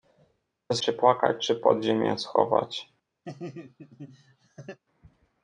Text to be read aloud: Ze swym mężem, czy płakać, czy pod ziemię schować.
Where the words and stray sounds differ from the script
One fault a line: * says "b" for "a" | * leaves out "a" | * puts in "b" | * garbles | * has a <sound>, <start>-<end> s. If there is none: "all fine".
* leaves out "swym mężem"
* has a laugh, 3.2-4.8 s